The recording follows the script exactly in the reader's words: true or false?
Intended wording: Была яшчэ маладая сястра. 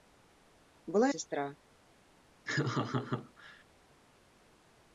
false